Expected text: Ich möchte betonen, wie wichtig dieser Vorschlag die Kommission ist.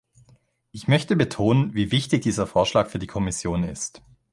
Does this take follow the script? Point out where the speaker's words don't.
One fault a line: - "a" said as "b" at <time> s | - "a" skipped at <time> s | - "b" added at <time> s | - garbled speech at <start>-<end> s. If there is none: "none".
- "für" added at 2.9 s